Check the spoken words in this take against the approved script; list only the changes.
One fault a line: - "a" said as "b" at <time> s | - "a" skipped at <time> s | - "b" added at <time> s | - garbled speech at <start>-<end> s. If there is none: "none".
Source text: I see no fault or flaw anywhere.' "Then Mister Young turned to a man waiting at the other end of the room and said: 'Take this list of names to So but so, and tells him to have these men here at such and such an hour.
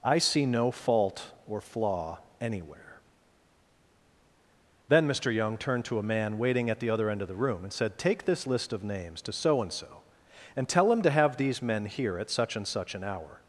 - "but" said as "and" at 9.6 s
- "tells" said as "tell" at 10.7 s